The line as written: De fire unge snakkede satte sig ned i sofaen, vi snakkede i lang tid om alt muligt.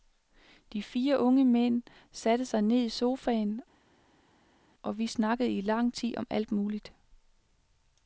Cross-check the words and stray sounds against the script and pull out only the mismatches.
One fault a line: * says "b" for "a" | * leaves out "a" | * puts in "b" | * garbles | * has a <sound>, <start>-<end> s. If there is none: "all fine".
* says "mænd" for "snakkede"
* puts in "og"